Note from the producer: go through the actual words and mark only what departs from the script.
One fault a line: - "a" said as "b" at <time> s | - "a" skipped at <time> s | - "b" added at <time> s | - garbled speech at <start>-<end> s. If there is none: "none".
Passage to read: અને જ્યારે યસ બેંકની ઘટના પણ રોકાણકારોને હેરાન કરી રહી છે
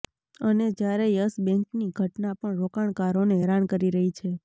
none